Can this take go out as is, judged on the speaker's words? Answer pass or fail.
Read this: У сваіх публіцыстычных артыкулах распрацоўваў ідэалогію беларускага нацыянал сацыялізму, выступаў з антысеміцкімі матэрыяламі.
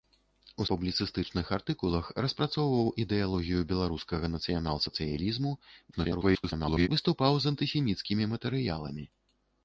fail